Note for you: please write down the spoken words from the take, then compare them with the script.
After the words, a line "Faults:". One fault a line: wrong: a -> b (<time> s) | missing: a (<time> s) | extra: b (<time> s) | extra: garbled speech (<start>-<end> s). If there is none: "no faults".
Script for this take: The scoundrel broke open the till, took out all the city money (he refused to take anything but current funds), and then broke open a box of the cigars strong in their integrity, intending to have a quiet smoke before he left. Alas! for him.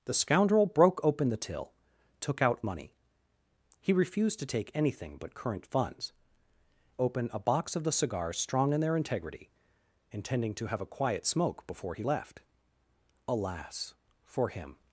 The scoundrel broke open the till, took out money (he refused to take anything but current funds), open a box of the cigars strong in their integrity, intending to have a quiet smoke before he left. Alas! for him.
Faults:
missing: all the city (2.6 s)
missing: and then broke (6.1 s)